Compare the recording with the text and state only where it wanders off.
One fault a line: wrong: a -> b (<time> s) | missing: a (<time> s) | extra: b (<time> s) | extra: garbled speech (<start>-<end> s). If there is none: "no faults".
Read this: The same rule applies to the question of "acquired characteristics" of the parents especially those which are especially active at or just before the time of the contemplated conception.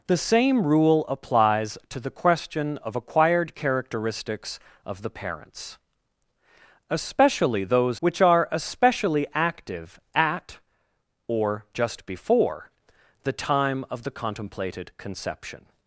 no faults